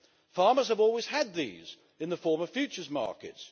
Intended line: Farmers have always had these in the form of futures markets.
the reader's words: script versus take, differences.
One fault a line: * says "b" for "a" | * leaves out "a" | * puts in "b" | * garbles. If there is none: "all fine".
all fine